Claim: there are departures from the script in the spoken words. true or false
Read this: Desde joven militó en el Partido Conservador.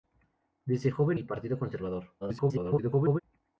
true